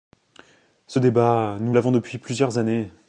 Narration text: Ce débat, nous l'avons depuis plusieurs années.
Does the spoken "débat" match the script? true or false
true